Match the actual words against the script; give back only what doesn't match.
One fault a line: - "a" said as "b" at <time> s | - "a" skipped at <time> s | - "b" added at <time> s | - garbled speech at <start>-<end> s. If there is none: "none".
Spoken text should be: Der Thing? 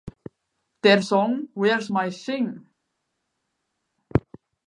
- "Song Where's My" added at 1.0 s